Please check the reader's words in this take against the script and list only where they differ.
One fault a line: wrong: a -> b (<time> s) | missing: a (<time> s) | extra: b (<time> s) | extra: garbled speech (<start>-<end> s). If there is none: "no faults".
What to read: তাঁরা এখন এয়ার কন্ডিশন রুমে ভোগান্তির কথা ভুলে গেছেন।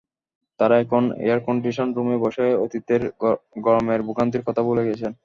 extra: বসে অতীতের গরমের (2.2 s)